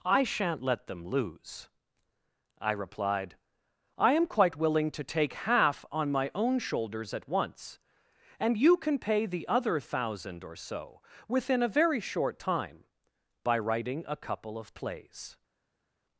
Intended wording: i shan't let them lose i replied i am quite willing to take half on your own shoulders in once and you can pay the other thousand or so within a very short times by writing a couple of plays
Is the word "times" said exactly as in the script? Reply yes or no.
no